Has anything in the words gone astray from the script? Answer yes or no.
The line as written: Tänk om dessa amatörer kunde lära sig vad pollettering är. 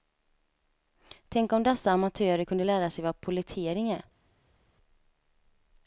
no